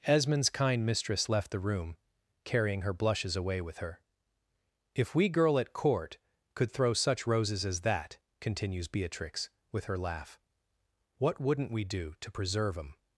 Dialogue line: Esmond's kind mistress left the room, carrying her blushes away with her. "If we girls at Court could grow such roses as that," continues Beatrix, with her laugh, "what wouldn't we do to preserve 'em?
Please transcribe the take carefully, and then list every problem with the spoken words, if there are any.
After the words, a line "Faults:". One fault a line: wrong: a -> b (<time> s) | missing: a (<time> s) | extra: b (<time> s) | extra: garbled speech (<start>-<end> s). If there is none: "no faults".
Esmond's kind mistress left the room, carrying her blushes away with her. "If we girl at Court could throw such roses as that," continues Beatrix, with her laugh, "what wouldn't we do to preserve 'em?
Faults:
wrong: girls -> girl (5.3 s)
wrong: grow -> throw (6.7 s)